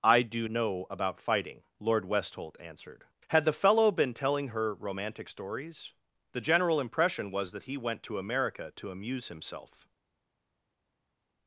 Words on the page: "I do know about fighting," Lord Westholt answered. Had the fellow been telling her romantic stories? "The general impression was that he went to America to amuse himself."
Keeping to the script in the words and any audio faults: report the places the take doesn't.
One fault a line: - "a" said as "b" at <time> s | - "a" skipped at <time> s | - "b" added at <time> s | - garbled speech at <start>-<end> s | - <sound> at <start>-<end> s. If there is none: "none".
none